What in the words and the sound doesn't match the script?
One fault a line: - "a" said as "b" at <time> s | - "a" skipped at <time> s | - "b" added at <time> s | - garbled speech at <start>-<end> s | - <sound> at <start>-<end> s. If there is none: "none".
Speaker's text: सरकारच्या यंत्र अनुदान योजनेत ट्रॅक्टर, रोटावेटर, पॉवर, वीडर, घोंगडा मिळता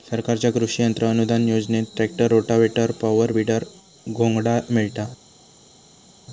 - "कृषि" added at 0.5 s